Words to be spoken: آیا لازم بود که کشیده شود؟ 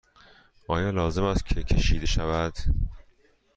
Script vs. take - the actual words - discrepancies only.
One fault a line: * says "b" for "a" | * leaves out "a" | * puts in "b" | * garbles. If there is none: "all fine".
* says "است" for "بود"